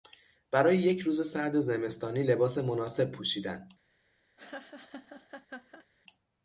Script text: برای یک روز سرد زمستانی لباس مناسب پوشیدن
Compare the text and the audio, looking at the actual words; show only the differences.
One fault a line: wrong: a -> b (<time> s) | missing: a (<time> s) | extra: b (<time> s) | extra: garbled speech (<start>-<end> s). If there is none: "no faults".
no faults